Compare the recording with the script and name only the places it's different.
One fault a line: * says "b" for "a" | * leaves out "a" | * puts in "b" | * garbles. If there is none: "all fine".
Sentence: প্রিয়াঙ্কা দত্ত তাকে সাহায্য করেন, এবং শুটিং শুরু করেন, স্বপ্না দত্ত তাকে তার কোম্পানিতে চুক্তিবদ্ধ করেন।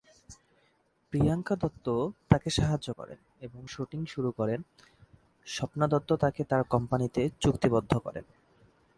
all fine